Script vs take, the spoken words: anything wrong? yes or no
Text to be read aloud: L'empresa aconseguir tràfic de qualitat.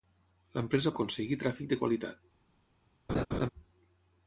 no